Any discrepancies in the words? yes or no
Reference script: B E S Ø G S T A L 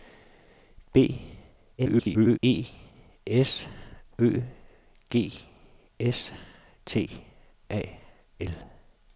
yes